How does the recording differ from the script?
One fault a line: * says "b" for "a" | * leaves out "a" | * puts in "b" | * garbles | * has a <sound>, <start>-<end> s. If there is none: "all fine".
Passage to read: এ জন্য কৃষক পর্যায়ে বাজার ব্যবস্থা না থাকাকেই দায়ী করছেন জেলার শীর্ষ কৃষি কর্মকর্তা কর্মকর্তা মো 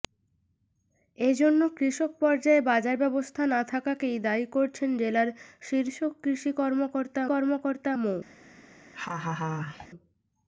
* has a laugh, 8.9-9.9 s